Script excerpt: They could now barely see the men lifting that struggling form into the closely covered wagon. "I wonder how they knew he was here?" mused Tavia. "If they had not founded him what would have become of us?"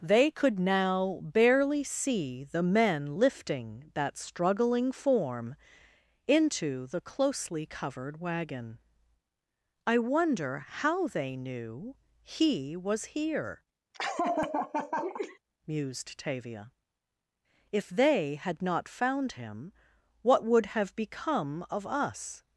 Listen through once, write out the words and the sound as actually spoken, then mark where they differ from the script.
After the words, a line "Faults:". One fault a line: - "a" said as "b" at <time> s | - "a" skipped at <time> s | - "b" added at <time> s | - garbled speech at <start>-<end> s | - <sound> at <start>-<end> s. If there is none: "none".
They could now barely see the men lifting that struggling form into the closely covered wagon. "I wonder how they knew he was here?" mused Tavia. "If they had not found him what would have become of us?"
Faults:
- laugh at 13.9-15.4 s
- "founded" said as "found" at 18.9 s